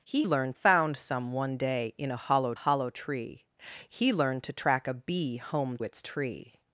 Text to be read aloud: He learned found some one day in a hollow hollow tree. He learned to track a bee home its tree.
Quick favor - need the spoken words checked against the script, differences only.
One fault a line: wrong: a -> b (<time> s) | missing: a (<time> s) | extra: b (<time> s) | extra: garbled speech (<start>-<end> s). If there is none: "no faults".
no faults